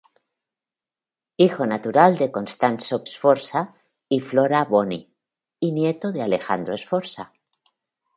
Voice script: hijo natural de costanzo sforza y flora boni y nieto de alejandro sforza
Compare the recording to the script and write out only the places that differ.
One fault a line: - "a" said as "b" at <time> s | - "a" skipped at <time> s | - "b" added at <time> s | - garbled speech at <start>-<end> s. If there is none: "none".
none